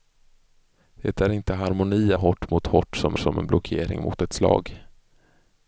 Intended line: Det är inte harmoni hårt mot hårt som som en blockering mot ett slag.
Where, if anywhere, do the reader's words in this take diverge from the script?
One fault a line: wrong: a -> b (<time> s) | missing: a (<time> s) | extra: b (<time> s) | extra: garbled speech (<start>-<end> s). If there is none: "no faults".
no faults